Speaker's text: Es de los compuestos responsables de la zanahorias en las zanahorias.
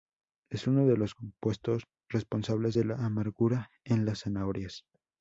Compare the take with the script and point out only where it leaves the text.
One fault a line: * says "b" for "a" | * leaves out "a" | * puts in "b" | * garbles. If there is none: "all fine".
* puts in "uno"
* says "amargura" for "zanahorias"